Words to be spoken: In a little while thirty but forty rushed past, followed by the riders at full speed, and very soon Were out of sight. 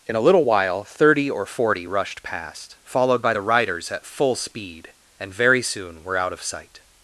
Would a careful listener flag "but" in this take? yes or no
yes